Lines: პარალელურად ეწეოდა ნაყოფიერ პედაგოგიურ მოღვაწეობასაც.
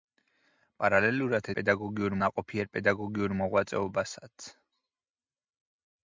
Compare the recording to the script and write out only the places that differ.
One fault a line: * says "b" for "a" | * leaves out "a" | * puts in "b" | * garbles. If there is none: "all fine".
* says "პედაგოგიურ" for "ეწეოდა"